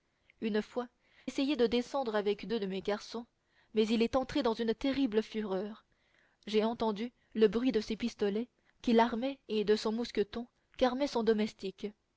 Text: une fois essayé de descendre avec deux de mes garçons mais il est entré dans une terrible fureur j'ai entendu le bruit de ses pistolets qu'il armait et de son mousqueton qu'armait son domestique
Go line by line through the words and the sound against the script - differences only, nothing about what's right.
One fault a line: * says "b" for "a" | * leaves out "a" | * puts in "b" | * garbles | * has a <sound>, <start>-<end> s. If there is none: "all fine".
all fine